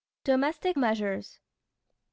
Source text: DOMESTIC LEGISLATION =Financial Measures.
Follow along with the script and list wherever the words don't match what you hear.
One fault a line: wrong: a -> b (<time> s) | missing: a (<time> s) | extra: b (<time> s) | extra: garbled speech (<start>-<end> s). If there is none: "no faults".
missing: LEGISLATION Financial (0.8 s)